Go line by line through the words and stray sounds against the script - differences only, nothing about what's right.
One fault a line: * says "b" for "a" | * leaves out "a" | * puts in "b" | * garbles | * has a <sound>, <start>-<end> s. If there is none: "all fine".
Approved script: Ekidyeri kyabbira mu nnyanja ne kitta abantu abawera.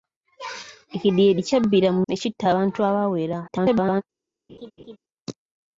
* leaves out "nnyanja"
* garbles
* has a laugh, 4.5-5.0 s